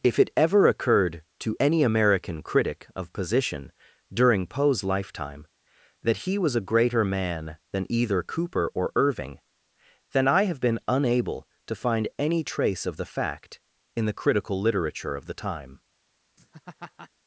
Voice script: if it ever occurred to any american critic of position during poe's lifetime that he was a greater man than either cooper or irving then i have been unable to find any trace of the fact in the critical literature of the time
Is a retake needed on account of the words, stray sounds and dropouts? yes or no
yes